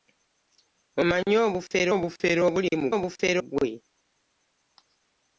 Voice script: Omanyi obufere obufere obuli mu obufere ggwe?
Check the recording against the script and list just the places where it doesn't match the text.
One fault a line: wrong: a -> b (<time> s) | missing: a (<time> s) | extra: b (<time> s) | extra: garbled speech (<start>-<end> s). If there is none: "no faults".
no faults